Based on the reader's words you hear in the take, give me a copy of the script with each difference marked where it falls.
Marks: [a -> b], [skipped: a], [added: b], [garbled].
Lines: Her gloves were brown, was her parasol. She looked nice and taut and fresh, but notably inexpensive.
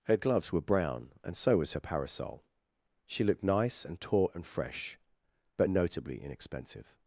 Her gloves were brown, [added: and so] was her parasol. She looked nice and taut and fresh, but notably inexpensive.